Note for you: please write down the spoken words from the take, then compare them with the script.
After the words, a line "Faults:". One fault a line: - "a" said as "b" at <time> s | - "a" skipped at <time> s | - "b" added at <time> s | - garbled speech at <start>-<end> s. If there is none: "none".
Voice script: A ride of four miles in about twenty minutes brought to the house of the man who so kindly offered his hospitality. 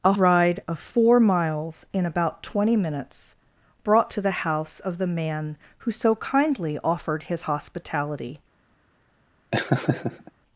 A ride of four miles in about twenty minutes brought to the house of the man who so kindly offered his hospitality.
Faults:
none